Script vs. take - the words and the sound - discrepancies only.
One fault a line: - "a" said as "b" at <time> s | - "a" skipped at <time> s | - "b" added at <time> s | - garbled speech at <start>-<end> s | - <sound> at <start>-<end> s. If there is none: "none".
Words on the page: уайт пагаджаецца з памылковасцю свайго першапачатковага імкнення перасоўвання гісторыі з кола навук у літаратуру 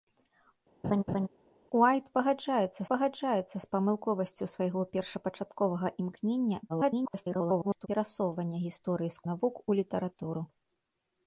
- laugh at 0.8-1.3 s
- "пагаджаецца" added at 2.9 s
- garbled speech at 6.7-7.9 s
- "кола" skipped at 9.3 s